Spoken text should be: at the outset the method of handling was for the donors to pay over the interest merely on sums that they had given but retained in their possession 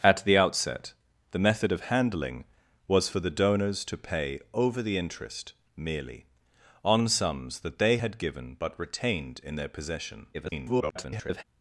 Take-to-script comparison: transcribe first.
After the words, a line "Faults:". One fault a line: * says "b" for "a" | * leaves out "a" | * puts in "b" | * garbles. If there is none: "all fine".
at the outset the method of handling was for the donors to pay over the interest merely on sums that they had given but retained in their possession [garbled]
Faults:
* garbles